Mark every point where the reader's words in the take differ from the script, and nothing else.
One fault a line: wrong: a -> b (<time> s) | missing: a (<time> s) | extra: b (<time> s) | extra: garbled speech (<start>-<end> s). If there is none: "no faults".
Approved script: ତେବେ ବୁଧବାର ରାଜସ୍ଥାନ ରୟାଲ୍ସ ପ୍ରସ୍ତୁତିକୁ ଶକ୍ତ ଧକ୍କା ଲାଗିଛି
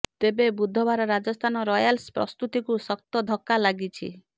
no faults